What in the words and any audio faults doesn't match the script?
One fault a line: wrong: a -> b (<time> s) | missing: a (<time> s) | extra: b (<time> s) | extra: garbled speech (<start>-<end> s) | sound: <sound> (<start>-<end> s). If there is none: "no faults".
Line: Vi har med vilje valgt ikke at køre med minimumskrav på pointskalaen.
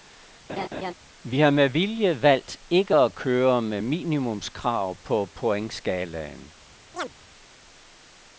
sound: laugh (0.5-0.9 s)
sound: chirp (6.9-7.1 s)